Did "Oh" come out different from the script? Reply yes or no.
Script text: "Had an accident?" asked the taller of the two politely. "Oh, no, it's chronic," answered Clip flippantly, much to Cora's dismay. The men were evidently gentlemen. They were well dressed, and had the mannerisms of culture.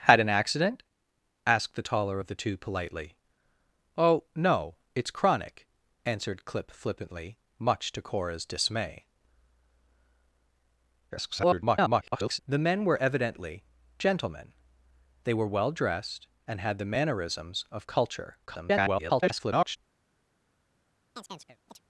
no